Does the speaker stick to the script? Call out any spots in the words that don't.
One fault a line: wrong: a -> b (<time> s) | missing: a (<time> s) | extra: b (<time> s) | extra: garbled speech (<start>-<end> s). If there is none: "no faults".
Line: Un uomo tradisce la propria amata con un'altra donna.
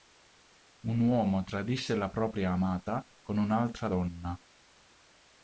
no faults